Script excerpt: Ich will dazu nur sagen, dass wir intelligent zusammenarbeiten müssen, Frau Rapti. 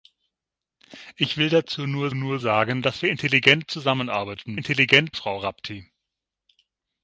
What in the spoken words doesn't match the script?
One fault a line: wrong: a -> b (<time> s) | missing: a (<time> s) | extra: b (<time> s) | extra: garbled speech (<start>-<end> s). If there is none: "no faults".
extra: nur (2.1 s)
wrong: müssen -> intelligent (4.5 s)